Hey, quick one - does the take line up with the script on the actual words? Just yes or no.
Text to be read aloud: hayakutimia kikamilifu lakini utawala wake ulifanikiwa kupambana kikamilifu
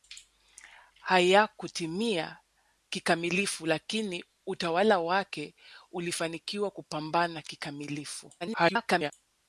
no